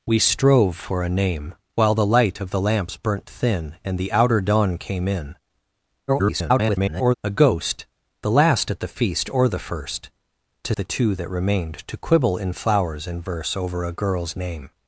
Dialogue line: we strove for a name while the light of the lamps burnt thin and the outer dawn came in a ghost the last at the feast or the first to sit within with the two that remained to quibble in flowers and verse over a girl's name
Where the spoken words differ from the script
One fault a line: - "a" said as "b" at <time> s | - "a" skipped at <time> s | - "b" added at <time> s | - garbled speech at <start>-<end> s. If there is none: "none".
- garbled speech at 6.1-7.2 s
- "sit within with" skipped at 10.7 s